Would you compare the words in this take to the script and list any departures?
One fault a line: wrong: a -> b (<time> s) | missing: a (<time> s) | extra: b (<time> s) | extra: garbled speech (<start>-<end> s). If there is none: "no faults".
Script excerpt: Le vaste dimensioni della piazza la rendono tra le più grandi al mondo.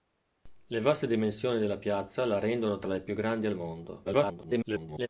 extra: garbled speech (4.0-5.1 s)